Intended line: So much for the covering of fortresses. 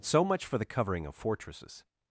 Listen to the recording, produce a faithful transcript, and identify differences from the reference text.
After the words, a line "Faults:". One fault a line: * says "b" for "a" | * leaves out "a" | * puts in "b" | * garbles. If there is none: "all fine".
So much for the covering of fortresses.
Faults:
all fine